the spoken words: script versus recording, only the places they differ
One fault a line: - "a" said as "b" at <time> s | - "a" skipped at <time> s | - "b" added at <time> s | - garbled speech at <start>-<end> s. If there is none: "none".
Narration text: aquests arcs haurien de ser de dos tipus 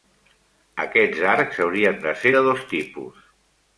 none